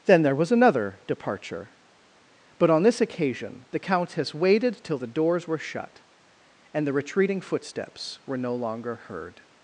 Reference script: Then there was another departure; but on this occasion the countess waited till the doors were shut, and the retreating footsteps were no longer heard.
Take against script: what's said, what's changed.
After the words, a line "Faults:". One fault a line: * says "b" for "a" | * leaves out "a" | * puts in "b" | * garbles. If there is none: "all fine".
Then there was another departure; but on this occasion the countess waited till the doors were shut, and the retreating footsteps were no longer heard.
Faults:
all fine